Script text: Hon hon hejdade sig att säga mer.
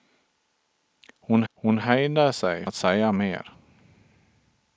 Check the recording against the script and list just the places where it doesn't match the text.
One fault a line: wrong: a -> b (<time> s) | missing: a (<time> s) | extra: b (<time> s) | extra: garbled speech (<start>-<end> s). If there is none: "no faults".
no faults